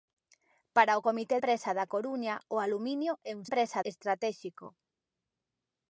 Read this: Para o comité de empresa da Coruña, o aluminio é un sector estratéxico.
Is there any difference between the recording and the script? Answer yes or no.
yes